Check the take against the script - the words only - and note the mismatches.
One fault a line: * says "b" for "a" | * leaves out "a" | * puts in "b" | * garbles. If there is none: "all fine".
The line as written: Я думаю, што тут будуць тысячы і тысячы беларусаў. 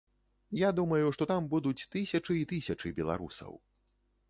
* says "там" for "тут"